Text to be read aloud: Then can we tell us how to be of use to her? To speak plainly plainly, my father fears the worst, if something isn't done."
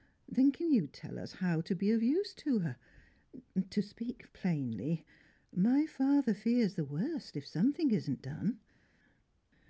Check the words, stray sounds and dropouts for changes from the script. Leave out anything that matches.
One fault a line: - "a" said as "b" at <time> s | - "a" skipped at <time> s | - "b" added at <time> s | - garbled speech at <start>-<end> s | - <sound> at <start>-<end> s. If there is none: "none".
- "we" said as "you" at 0.7 s
- "plainly" skipped at 5.0 s